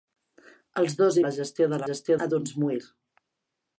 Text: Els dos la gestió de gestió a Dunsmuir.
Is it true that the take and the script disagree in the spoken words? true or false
false